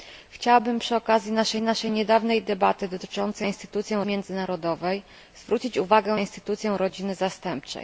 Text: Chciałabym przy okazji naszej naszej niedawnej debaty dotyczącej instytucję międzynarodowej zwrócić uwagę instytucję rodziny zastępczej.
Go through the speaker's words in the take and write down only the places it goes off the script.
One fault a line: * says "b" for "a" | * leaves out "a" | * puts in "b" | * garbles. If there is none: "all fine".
all fine